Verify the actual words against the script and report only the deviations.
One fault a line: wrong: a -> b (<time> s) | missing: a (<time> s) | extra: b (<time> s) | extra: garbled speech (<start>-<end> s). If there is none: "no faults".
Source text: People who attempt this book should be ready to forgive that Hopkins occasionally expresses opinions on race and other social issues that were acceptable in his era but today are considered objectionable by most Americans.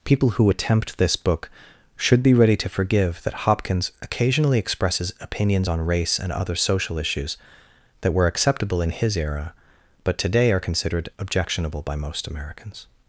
no faults